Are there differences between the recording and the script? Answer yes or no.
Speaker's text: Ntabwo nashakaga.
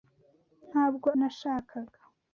no